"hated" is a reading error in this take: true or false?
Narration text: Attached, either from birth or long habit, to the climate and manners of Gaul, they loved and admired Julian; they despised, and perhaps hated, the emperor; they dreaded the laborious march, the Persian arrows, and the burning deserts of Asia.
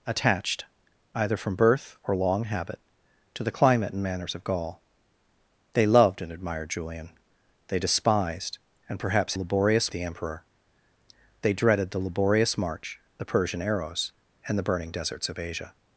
true